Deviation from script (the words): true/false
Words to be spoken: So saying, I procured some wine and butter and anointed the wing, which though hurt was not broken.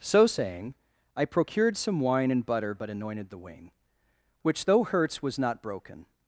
true